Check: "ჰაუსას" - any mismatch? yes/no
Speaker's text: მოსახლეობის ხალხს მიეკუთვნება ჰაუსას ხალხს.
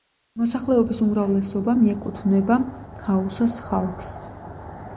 no